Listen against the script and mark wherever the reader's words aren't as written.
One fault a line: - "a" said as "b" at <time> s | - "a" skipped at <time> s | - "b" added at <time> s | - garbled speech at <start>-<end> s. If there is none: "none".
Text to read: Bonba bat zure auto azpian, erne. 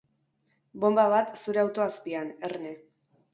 none